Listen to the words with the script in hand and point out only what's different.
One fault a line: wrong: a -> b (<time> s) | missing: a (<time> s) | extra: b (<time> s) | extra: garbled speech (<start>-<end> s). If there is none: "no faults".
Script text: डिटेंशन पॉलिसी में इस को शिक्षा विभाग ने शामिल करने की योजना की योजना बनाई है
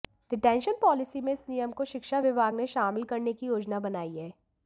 extra: नियम (1.5 s)
missing: की योजना (3.8 s)